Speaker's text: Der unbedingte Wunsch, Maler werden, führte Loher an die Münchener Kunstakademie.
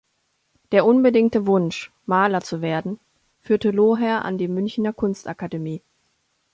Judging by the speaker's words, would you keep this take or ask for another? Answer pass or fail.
fail